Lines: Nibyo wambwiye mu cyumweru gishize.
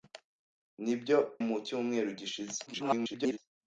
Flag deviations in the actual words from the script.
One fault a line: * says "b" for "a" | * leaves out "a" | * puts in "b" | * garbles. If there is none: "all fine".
* leaves out "wambwiye"
* garbles